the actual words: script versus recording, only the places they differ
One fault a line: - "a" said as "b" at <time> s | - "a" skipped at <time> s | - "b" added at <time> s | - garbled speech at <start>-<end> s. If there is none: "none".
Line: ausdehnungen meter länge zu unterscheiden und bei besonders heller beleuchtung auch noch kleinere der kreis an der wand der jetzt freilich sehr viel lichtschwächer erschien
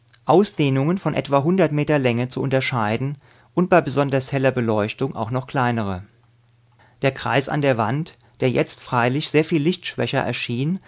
- "von etwa hundert" added at 1.0 s